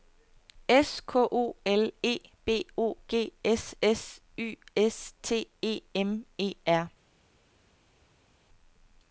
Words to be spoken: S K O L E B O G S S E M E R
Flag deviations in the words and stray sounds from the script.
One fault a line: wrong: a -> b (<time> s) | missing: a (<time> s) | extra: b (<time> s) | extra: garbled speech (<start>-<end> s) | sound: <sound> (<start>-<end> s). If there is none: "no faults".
extra: Y S T (4.3 s)